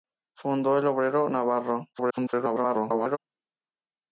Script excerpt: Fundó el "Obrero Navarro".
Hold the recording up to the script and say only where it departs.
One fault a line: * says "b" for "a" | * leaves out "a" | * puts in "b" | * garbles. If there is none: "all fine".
* garbles